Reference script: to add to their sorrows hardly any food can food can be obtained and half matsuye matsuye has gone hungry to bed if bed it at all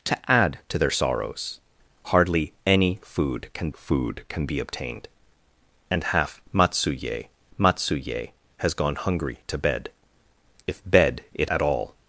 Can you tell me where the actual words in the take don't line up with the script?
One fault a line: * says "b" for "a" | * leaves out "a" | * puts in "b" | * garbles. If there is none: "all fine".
all fine